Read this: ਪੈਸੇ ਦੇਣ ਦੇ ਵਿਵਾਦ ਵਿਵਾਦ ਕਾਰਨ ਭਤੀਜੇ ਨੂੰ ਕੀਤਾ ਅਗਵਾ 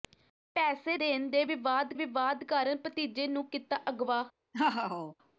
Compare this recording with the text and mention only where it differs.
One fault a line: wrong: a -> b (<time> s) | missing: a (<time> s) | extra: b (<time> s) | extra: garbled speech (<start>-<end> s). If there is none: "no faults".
no faults